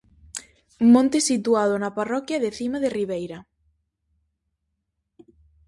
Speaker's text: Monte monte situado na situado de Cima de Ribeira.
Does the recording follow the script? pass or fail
fail